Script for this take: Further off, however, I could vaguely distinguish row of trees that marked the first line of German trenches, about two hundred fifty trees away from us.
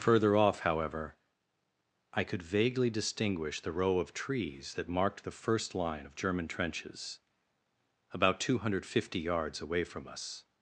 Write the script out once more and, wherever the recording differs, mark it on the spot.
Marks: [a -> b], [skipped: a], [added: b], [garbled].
Further off, however, I could vaguely distinguish [added: the] row of trees that marked the first line of German trenches, about two hundred fifty [trees -> yards] away from us.